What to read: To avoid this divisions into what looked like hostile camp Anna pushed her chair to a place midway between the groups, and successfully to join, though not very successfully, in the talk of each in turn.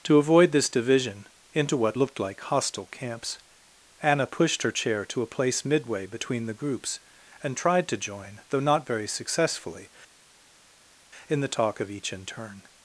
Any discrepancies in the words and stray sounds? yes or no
yes